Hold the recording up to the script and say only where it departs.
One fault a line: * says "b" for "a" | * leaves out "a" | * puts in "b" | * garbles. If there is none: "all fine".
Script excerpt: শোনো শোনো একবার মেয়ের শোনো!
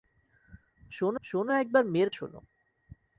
all fine